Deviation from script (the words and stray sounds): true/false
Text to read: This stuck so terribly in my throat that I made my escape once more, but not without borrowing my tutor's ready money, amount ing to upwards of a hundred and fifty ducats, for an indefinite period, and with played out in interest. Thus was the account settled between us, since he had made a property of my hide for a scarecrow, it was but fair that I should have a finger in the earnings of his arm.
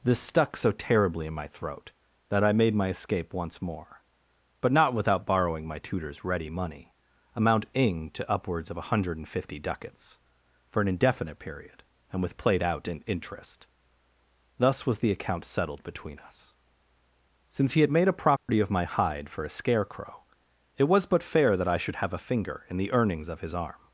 true